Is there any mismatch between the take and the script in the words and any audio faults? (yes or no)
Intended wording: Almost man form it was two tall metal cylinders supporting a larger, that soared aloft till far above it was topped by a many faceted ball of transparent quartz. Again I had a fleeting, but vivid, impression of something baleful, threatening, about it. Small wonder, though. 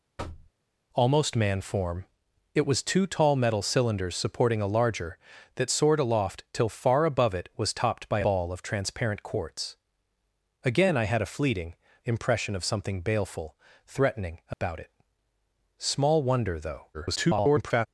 yes